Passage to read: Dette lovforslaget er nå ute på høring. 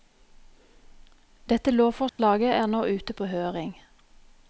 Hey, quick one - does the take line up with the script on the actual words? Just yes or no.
yes